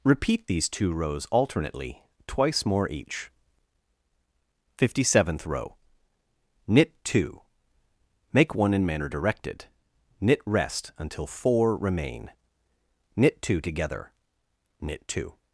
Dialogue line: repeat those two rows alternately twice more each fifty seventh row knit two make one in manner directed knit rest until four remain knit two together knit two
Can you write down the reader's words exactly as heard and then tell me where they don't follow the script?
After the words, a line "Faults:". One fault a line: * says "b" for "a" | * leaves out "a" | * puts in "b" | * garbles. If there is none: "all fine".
repeat these two rows alternately twice more each fifty seventh row knit two make one in manner directed knit rest until four remain knit two together knit two
Faults:
* says "these" for "those"